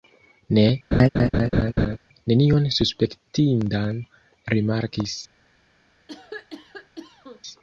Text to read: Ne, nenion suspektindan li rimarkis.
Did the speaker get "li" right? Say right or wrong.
wrong